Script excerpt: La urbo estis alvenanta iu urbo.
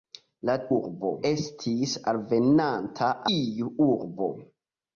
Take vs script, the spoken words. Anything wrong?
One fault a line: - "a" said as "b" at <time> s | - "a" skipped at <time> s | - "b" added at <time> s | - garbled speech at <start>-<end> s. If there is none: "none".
none